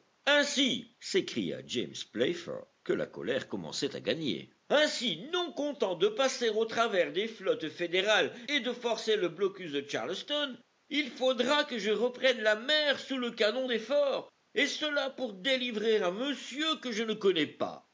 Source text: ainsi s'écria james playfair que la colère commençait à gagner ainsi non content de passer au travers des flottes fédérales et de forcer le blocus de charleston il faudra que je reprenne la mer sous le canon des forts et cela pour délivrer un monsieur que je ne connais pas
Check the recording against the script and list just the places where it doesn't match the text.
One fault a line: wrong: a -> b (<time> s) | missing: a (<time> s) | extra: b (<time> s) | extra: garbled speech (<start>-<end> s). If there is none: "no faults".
no faults